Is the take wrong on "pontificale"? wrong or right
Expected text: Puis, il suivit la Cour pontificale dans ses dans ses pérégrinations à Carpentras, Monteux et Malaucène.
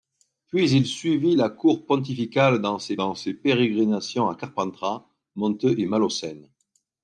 right